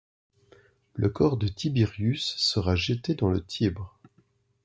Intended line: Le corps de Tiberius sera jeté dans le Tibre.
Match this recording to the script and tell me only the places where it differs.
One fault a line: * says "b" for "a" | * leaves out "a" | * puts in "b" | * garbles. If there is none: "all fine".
all fine